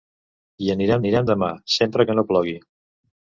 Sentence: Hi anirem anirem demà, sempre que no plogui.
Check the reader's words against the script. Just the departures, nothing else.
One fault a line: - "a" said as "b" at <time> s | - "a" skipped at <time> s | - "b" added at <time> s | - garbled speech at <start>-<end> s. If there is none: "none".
none